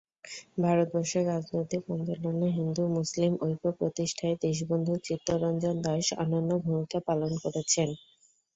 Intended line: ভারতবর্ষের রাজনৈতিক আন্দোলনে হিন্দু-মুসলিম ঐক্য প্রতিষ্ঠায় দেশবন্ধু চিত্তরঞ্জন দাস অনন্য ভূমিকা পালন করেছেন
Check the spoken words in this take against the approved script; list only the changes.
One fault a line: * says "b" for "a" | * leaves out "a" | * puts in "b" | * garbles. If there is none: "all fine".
all fine